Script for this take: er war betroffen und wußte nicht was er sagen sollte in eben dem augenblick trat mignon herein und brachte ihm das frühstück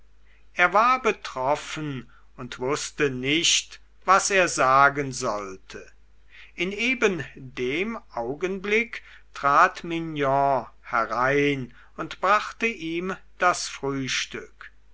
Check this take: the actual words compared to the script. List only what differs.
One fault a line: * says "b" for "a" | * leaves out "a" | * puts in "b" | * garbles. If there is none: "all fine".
all fine